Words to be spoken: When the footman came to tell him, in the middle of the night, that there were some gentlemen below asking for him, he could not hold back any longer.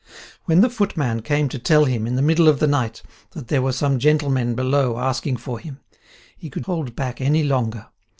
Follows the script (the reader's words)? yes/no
no